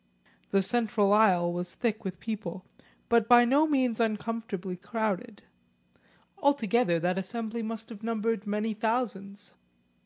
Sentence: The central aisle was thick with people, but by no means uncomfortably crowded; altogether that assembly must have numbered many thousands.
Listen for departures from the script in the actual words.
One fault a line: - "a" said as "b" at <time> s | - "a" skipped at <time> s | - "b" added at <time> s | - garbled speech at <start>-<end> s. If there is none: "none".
none